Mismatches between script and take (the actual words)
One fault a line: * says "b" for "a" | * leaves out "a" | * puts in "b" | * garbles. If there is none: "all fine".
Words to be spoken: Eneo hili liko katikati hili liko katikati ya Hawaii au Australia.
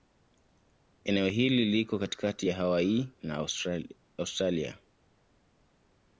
* leaves out "hili liko katikati"
* says "na" for "au"